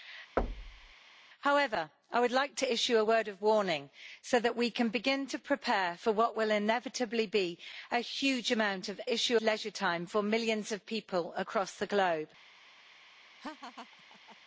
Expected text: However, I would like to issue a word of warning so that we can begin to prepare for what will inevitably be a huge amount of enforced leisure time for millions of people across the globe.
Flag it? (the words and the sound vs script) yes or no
yes